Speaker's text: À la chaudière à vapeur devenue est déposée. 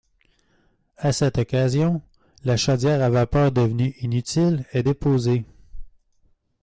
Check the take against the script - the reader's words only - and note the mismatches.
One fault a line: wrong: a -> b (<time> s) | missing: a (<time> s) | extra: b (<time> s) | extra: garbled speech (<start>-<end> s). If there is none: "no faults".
extra: cette occasion (1.1 s)
extra: inutile (4.0 s)